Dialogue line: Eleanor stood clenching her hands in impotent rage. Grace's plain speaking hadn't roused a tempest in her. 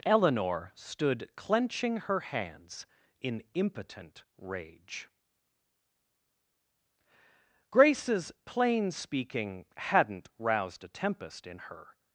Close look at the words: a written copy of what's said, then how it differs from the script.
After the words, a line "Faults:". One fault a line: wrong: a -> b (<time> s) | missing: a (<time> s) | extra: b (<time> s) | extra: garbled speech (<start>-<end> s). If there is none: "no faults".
Eleanor stood clenching her hands in impotent rage. Grace's plain speaking hadn't roused a tempest in her.
Faults:
no faults